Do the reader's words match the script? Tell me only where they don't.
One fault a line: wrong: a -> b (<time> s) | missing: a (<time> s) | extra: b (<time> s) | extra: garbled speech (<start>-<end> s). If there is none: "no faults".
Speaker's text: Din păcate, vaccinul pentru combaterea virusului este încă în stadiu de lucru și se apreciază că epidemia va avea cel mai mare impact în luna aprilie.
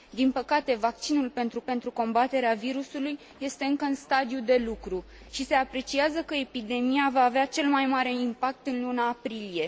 extra: pentru (1.6 s)